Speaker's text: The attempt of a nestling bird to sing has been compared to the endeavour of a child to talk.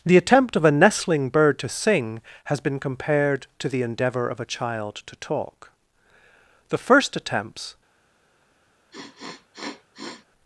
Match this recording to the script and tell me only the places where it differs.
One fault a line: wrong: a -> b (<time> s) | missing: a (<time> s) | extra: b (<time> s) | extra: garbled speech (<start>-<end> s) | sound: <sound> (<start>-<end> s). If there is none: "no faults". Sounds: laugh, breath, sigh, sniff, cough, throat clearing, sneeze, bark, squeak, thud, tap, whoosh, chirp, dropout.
extra: The first attempts (6.7 s)
sound: sniff (8.9-10.3 s)